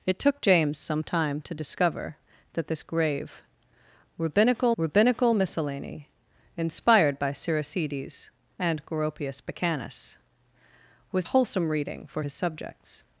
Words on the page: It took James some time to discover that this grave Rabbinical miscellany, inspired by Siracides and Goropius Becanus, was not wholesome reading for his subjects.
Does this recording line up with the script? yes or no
no